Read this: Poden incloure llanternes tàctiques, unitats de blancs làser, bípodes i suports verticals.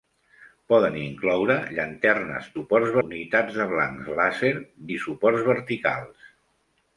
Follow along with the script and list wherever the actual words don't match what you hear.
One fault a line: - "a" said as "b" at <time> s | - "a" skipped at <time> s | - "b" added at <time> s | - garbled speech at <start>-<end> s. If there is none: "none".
- "tàctiques" said as "suports" at 2.6 s
- "bípodes" skipped at 4.5 s